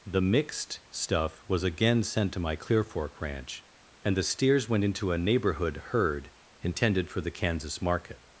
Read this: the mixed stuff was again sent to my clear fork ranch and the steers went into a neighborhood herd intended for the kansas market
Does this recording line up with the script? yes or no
yes